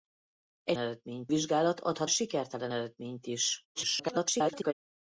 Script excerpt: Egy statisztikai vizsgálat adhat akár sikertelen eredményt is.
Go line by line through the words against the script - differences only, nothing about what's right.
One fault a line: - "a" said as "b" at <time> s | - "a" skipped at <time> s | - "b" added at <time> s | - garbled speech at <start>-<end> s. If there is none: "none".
- "statisztikai" said as "eredményt" at 0.8 s
- "akár" skipped at 2.1 s
- garbled speech at 3.7-4.7 s